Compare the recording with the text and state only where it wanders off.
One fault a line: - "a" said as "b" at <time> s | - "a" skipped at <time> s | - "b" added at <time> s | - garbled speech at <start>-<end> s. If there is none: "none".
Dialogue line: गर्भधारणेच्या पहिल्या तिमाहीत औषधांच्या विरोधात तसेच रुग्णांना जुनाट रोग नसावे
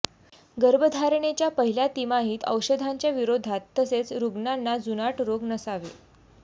none